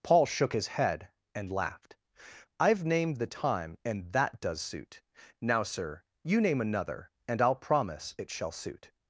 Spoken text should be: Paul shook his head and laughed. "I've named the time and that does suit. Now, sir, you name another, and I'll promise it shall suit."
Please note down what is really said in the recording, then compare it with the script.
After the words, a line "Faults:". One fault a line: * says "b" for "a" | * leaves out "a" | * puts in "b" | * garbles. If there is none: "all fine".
Paul shook his head and laughed. "I've named the time and that does suit. Now, sir, you name another, and I'll promise it shall suit."
Faults:
all fine